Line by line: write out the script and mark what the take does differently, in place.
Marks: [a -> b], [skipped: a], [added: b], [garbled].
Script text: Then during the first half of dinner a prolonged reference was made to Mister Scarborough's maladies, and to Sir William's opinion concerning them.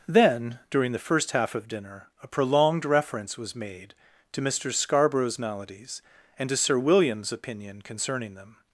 Then during the first half of dinner a prolonged reference was made to Mister Scarborough's maladies, and to Sir William's opinion concerning them.